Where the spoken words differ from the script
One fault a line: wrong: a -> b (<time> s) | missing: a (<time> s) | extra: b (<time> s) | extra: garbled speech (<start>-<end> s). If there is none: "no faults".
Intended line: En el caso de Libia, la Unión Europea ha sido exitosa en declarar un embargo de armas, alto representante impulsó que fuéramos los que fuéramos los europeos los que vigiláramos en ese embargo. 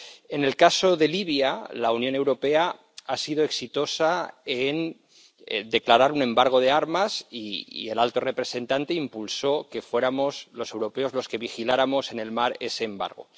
extra: y el (7.3 s)
missing: que fuéramos los (10.7 s)
extra: el mar (12.2 s)